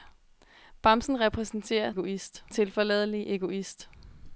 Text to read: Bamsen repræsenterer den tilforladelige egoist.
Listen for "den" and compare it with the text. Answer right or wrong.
wrong